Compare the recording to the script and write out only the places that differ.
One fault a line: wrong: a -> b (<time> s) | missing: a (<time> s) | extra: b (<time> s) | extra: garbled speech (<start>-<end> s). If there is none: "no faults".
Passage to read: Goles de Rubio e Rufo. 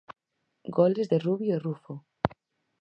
no faults